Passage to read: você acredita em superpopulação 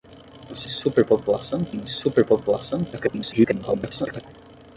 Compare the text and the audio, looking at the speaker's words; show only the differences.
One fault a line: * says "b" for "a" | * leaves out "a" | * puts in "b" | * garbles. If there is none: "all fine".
* says "superpopulação" for "acredita"
* garbles